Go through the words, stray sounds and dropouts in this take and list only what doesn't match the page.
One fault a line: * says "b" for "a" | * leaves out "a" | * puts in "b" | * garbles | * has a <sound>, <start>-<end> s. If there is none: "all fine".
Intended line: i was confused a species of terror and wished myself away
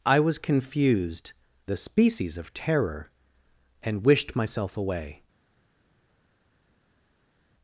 all fine